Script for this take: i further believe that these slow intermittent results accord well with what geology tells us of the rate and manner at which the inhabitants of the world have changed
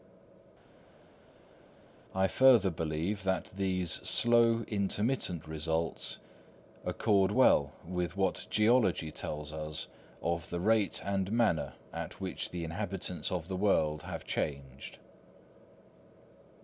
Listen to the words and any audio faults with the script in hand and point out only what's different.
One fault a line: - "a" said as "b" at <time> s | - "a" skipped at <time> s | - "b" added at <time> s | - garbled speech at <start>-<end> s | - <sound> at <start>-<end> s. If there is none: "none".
none